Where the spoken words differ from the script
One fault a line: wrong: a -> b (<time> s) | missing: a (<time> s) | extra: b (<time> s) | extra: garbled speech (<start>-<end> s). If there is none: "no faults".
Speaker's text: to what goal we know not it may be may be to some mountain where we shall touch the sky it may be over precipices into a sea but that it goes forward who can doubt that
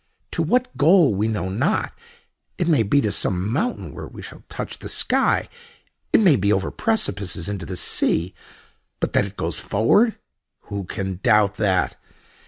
missing: may be (3.0 s)
wrong: a -> the (7.6 s)